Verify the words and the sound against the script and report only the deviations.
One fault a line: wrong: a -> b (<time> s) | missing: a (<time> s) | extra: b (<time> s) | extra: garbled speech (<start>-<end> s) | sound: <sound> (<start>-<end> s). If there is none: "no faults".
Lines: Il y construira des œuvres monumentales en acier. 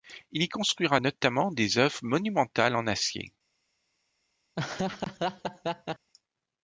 extra: notamment (1.0 s)
sound: laugh (4.6-6.1 s)